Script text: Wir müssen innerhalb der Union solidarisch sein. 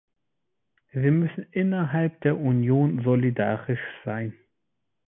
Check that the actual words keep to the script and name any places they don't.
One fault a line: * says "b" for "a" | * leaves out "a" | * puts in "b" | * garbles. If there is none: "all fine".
all fine